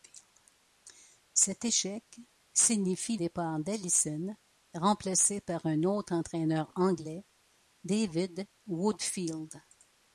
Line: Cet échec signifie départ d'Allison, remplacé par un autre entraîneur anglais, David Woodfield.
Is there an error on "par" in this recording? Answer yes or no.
no